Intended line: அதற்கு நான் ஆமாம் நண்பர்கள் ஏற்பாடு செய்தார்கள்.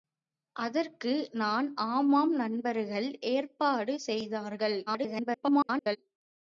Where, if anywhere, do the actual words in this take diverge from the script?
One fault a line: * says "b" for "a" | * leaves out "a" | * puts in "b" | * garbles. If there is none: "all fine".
* garbles